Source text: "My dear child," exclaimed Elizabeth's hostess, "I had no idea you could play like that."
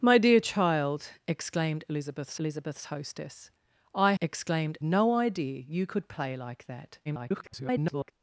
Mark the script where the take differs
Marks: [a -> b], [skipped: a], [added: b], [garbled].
"My dear child," exclaimed Elizabeth's [added: Elizabeth's] hostess, "I [had -> exclaimed] no idea you could play like that." [garbled]